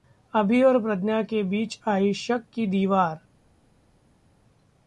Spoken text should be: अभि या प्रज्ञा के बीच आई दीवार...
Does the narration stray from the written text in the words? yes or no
yes